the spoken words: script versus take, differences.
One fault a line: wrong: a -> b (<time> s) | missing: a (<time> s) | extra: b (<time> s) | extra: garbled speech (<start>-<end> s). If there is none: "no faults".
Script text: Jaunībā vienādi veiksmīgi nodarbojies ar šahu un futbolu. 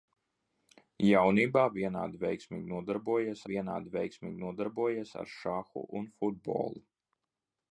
extra: vienādi veiksmīgi nodarbojies (3.5 s)